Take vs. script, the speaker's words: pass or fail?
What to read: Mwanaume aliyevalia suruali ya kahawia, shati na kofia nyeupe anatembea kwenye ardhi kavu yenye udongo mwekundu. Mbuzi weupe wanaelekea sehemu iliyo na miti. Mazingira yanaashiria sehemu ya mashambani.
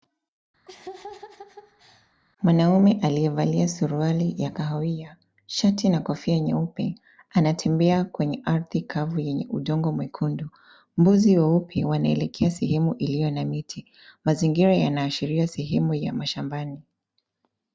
pass